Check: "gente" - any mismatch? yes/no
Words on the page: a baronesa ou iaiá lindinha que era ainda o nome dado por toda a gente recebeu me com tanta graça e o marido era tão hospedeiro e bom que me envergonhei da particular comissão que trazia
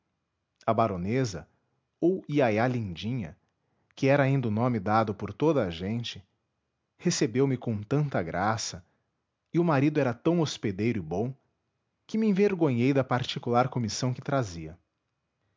no